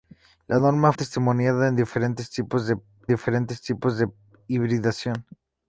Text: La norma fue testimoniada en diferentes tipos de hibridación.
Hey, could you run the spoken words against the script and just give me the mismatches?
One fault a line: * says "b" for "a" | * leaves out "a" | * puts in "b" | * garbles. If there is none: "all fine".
* leaves out "fue"
* puts in "diferentes tipos de"